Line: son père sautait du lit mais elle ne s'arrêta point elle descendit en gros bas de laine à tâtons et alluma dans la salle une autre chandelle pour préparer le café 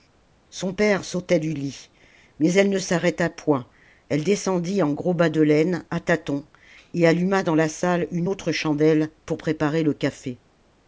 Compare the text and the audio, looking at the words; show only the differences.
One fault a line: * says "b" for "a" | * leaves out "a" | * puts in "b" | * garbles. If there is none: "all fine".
all fine